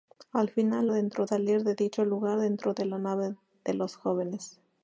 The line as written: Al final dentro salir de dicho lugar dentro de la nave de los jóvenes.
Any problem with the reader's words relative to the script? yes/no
no